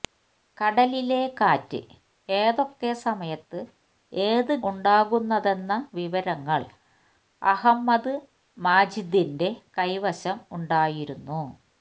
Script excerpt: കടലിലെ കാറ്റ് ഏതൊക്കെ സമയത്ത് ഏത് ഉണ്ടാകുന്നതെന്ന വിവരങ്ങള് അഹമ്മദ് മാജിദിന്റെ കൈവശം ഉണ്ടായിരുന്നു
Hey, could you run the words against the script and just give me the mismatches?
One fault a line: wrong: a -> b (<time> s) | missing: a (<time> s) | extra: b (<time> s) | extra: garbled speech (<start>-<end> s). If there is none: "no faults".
no faults